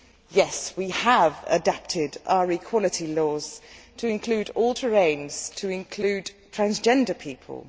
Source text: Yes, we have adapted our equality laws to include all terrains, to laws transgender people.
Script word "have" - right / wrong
right